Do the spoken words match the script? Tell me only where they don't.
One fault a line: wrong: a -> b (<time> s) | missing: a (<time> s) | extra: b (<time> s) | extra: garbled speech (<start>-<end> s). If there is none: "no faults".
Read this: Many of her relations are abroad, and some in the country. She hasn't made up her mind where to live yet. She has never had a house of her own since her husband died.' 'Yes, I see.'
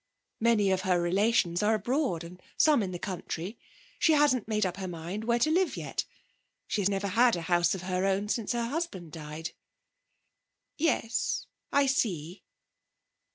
no faults